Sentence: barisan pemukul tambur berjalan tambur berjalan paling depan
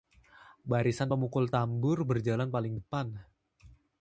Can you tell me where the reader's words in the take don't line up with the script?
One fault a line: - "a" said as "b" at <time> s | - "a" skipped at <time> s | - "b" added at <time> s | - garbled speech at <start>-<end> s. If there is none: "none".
- "tambur berjalan" skipped at 2.5 s